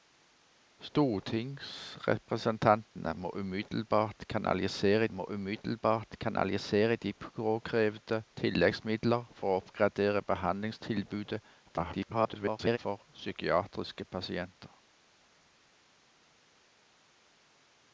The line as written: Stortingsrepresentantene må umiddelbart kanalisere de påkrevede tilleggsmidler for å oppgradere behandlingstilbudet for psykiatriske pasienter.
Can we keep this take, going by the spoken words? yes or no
no